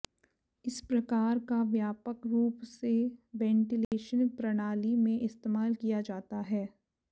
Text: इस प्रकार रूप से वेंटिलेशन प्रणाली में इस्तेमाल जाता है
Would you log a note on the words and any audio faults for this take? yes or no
yes